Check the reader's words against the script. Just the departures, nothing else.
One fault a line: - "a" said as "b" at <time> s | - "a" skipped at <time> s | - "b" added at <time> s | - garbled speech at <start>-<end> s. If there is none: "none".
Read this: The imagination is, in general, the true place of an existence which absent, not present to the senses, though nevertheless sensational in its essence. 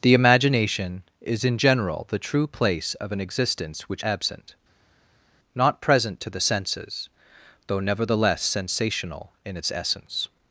none